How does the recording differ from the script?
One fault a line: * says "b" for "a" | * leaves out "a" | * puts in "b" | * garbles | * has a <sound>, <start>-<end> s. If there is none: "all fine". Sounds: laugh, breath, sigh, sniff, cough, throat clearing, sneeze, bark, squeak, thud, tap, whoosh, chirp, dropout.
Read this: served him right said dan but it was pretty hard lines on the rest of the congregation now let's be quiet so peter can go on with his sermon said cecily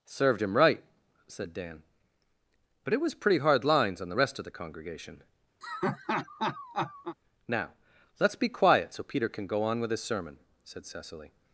* has a laugh, 5.6-7.2 s